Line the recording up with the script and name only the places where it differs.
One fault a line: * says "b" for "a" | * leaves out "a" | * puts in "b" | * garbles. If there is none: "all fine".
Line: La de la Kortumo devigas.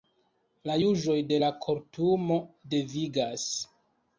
* puts in "juĝoj"